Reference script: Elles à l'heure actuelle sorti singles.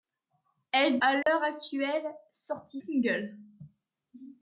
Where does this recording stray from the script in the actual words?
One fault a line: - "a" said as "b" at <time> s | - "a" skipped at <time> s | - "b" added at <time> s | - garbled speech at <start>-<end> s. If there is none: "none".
none